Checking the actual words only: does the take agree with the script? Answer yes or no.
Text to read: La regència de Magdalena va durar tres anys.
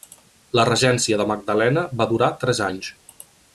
yes